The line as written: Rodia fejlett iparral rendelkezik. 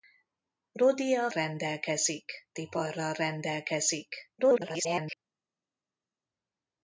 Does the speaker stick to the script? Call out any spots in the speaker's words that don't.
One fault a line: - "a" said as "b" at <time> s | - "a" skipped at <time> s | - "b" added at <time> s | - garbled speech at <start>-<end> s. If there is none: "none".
- "fejlett" said as "rendelkezik" at 1.3 s
- garbled speech at 4.4-5.2 s